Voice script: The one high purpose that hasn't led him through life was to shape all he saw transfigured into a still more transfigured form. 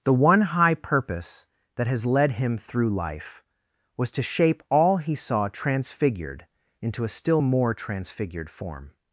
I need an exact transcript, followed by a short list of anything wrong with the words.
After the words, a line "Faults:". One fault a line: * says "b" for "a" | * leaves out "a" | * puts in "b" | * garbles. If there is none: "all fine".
The one high purpose that has led him through life was to shape all he saw transfigured into a still more transfigured form.
Faults:
* says "has" for "hasn't"